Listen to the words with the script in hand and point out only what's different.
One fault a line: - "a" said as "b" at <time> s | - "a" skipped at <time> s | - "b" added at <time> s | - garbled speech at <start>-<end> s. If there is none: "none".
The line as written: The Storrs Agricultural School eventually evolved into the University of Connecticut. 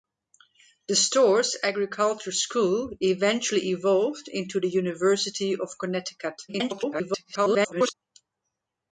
- garbled speech at 6.5-7.9 s